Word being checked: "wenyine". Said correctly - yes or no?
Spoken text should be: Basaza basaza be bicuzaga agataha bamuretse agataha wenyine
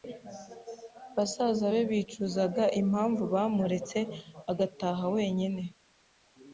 yes